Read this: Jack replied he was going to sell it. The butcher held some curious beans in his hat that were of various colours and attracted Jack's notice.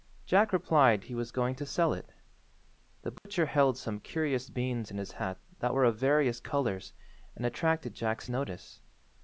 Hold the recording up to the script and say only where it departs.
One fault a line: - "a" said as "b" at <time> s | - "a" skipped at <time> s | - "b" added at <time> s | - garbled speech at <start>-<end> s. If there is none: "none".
none